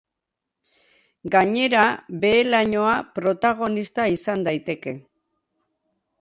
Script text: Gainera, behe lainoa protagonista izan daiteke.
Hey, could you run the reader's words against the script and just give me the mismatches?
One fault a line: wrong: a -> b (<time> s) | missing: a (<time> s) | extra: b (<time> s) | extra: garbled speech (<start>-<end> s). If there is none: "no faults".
no faults